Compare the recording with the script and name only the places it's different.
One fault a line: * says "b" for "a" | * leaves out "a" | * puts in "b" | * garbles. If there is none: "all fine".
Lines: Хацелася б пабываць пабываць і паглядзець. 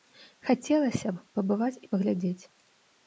* leaves out "пабываць"